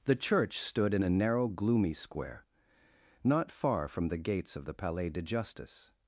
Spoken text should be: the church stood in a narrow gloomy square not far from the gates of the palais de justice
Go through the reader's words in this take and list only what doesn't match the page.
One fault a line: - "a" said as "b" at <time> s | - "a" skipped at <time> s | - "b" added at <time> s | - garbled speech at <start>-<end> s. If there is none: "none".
none